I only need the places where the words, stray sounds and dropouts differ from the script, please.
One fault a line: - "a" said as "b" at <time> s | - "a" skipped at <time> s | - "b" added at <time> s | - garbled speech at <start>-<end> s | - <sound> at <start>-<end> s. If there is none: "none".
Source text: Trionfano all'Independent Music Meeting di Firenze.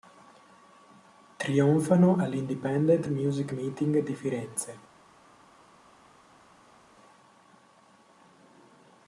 none